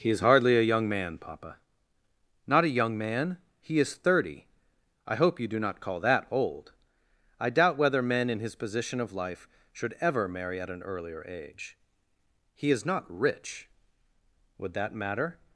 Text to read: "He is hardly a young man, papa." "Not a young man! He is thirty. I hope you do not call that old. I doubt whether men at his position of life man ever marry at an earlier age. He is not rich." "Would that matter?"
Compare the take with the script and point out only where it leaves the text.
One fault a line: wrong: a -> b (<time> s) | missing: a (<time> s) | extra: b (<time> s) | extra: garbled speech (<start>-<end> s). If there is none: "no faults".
wrong: at -> in (8.3 s)
wrong: man -> should (9.7 s)